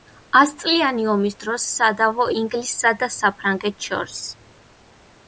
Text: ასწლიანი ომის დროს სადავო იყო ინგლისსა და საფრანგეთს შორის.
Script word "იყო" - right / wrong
wrong